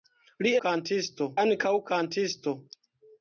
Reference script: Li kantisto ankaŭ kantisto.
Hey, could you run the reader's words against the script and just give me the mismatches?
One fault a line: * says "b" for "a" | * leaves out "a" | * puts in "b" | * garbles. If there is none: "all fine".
all fine